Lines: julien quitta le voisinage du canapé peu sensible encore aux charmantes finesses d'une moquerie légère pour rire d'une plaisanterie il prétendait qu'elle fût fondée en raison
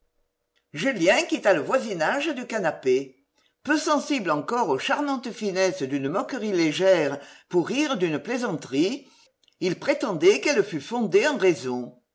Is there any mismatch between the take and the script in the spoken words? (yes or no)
no